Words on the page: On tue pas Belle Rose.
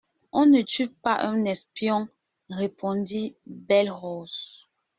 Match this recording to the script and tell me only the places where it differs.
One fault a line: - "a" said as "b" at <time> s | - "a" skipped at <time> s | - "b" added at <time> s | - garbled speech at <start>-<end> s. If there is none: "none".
- "ne" added at 0.5 s
- "un espion répondit" added at 1.2 s